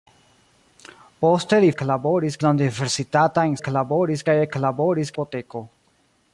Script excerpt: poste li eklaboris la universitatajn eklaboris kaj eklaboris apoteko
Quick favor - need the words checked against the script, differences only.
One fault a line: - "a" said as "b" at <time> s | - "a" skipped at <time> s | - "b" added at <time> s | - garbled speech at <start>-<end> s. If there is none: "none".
none